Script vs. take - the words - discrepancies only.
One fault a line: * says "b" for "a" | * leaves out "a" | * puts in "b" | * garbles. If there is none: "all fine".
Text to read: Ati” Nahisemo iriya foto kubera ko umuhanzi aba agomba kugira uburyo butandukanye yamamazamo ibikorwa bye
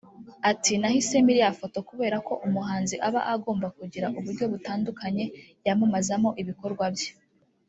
all fine